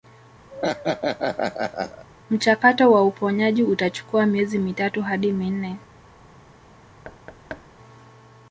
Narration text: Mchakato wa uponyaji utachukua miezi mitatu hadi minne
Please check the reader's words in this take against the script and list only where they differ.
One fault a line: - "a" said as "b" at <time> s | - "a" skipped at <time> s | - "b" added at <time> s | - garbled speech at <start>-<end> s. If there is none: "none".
none